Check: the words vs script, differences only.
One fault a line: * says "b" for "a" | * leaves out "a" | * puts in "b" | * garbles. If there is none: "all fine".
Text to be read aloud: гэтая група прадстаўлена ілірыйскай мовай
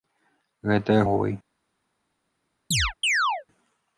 * leaves out "група прадстаўлена ілірыйскай"